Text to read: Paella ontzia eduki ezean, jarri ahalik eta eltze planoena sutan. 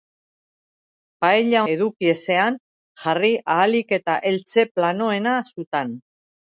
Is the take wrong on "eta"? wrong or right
right